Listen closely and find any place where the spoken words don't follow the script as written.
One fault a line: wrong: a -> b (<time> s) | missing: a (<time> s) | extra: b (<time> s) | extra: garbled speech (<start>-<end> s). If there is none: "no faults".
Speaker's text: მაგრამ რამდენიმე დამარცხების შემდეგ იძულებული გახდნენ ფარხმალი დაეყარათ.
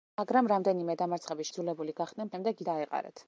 missing: შემდეგ (1.5 s)
wrong: ფარხმალი -> შემდეგ (2.3 s)